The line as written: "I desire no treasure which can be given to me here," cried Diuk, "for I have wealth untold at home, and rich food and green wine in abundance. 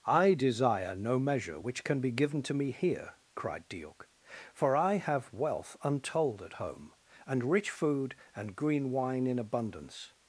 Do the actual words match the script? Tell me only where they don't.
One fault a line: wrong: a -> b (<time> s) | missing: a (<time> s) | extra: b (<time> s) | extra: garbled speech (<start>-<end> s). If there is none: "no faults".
wrong: treasure -> measure (1.2 s)